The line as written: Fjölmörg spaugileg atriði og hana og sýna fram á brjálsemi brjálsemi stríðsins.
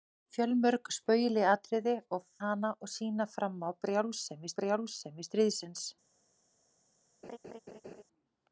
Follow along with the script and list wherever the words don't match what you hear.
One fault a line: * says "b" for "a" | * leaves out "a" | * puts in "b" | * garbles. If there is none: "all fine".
all fine